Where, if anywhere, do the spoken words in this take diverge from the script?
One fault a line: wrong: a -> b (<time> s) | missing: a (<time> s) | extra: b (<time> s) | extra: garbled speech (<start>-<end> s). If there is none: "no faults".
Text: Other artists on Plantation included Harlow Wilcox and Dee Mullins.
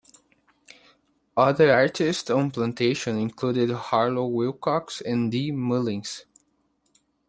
no faults